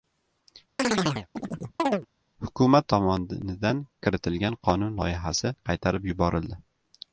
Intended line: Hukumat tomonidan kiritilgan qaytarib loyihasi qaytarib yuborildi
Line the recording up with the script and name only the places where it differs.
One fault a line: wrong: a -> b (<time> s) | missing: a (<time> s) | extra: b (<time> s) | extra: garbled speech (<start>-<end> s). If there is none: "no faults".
wrong: qaytarib -> qonun (4.7 s)